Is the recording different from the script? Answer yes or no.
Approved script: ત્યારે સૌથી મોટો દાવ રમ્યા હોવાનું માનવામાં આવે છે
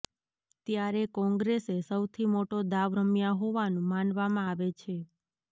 yes